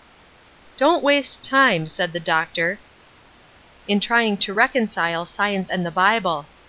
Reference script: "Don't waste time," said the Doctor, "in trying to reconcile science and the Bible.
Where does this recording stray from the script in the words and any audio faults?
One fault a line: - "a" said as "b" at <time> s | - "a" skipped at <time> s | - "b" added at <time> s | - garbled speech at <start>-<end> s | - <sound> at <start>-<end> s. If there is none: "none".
none